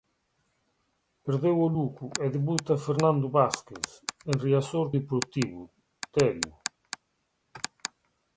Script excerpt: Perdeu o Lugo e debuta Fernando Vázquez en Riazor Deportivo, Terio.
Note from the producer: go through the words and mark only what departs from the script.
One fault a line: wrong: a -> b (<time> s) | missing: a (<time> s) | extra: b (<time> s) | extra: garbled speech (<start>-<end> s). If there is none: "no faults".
no faults